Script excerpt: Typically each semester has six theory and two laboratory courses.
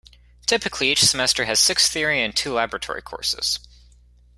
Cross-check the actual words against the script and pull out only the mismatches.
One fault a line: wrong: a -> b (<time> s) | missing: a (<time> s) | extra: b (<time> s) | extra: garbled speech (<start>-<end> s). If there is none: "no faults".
no faults